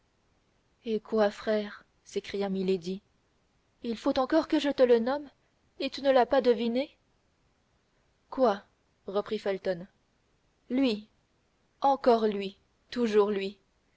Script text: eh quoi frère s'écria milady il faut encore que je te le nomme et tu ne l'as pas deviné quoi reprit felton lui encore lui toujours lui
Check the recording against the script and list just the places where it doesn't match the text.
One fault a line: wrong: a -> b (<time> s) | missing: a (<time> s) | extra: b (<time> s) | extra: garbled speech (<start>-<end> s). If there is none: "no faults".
no faults